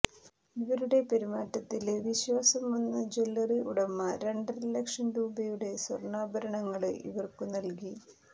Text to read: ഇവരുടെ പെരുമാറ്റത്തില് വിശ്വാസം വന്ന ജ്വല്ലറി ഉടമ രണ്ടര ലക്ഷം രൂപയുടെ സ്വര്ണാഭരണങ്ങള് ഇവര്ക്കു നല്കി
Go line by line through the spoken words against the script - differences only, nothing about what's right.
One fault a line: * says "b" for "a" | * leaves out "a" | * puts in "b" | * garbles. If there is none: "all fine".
all fine